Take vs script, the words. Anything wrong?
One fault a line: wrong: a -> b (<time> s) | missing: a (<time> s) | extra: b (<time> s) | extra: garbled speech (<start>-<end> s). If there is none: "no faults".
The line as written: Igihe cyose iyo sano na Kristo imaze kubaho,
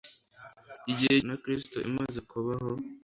missing: cyose iyo sano (1.2 s)